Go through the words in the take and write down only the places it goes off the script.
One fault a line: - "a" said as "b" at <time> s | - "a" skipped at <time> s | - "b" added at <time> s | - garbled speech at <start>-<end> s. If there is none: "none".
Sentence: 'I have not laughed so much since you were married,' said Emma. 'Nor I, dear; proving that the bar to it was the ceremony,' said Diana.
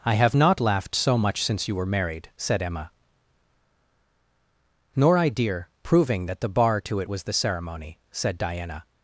none